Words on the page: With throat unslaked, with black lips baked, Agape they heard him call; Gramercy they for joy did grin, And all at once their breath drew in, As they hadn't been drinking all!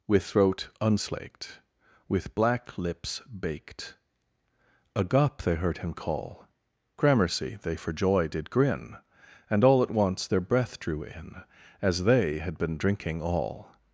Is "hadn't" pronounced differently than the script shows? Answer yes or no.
yes